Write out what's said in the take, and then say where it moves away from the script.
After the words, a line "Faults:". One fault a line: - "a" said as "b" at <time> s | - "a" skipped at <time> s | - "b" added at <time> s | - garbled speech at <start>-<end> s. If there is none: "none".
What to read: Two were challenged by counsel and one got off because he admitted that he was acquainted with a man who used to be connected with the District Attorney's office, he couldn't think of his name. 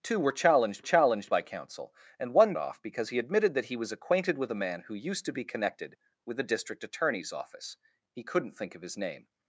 Two were challenged challenged by counsel and one off because he admitted that he was acquainted with a man who used to be connected with the District Attorney's office, he couldn't think of his name.
Faults:
- "challenged" added at 0.8 s
- "got" skipped at 2.5 s